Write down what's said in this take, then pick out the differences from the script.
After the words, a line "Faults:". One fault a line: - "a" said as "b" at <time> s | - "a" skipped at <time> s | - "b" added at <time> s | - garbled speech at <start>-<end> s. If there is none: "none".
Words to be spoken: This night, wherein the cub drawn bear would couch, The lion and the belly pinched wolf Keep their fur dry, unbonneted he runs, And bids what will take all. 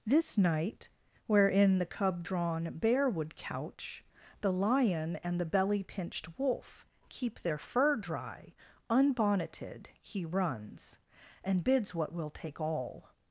This night, wherein the cub drawn bear would couch, The lion and the belly pinched wolf Keep their fur dry, unbonneted he runs, And bids what will take all.
Faults:
none